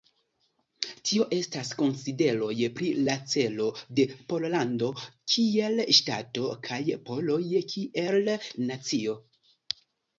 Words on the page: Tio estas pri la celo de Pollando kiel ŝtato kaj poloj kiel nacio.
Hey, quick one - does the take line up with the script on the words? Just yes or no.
no